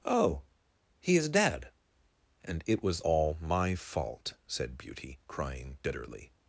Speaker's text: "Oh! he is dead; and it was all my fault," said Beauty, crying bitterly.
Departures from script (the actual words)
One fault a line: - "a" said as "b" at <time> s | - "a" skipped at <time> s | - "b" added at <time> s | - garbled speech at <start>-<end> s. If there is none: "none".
none